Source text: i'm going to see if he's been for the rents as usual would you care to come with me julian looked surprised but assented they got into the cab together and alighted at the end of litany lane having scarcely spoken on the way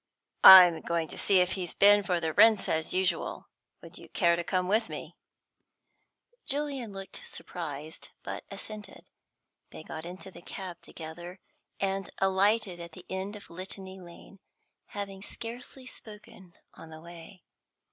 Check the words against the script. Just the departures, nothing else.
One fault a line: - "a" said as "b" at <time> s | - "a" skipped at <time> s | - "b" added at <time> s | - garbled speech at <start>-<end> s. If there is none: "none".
none